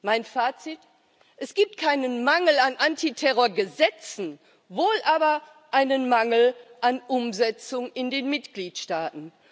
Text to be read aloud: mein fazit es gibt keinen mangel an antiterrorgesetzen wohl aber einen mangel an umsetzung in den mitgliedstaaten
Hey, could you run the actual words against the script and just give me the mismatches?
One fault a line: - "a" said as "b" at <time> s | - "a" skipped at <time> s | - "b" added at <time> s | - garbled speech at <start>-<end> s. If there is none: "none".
none